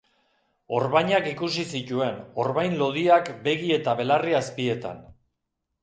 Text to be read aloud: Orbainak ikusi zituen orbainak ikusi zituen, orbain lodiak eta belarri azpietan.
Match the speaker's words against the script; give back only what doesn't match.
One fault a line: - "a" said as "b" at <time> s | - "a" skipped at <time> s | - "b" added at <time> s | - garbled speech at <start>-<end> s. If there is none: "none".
- "orbainak ikusi zituen" skipped at 2.2 s
- "begi" added at 3.5 s